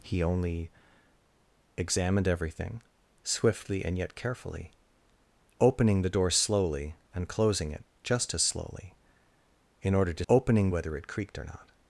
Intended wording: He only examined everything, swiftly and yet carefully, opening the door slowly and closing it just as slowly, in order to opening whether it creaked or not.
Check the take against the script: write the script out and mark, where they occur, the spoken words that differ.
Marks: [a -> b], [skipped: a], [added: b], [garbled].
He only examined everything, swiftly and yet carefully, opening the door slowly and closing it just as slowly, in order to opening whether it creaked or not.